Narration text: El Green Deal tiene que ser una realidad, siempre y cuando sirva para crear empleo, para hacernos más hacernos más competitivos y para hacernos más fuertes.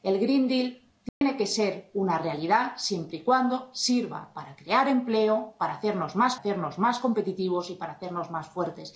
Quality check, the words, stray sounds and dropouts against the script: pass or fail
fail